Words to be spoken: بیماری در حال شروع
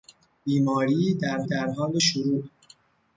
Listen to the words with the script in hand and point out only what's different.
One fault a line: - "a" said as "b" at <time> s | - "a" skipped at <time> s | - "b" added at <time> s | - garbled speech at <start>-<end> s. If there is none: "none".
- "در" added at 1.4 s